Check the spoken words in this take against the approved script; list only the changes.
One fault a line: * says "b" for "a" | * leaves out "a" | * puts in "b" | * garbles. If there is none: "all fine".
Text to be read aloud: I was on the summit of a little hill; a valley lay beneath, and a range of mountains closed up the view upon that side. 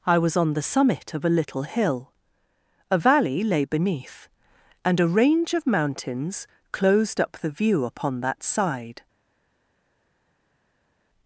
all fine